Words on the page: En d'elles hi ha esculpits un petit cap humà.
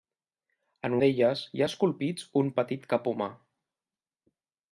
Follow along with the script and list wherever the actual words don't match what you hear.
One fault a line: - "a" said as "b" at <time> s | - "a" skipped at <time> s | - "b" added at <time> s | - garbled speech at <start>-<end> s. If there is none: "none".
none